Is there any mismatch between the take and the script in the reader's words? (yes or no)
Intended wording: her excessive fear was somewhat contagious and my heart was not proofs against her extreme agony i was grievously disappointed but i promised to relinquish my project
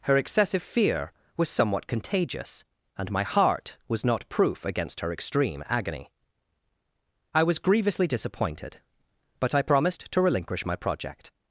yes